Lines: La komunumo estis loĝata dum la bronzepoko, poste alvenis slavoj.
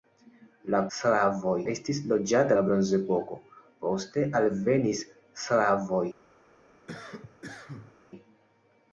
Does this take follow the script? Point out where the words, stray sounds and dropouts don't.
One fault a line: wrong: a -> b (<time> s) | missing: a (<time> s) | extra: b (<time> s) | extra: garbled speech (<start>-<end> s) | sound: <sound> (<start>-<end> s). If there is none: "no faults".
wrong: komunumo -> slavoj (1.0 s)
missing: dum (2.6 s)
sound: cough (6.9-8.0 s)